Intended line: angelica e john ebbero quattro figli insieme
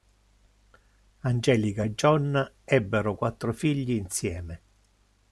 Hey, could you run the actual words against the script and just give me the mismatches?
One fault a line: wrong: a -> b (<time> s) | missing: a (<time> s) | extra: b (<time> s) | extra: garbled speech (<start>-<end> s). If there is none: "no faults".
no faults